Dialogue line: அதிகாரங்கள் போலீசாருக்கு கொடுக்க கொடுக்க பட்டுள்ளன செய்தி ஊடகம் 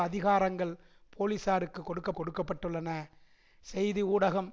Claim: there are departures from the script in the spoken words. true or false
false